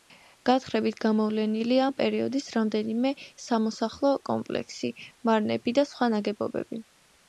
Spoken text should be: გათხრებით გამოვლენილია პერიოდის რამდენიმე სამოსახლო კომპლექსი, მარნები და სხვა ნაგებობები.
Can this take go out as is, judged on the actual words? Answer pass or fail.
fail